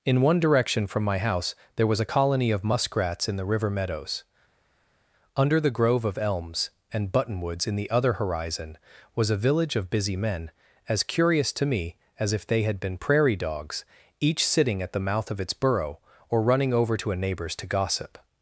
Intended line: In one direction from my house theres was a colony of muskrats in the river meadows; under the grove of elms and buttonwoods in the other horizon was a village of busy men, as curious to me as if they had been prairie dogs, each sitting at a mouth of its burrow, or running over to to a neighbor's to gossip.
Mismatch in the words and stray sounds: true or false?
true